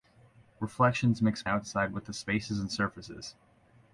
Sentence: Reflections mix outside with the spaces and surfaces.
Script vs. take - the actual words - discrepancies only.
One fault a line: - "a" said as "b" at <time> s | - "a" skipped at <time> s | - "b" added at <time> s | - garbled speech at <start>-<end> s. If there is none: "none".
none